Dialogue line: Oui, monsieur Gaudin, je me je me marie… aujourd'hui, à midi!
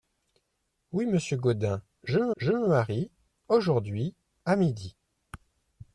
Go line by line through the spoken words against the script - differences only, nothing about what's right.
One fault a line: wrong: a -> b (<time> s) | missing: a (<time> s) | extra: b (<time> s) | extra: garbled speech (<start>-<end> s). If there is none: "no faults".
no faults